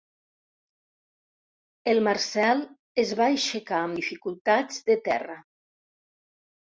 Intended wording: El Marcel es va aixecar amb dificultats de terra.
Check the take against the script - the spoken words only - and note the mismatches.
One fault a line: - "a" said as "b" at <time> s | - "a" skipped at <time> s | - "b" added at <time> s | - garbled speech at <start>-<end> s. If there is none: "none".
none